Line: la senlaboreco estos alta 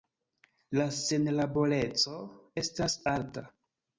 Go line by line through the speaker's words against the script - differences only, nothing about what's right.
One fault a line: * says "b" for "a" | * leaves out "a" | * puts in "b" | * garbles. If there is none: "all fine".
* says "estas" for "estos"